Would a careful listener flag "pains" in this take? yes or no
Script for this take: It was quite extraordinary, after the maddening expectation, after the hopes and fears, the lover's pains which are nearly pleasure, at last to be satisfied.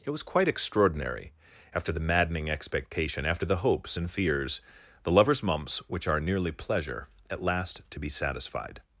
yes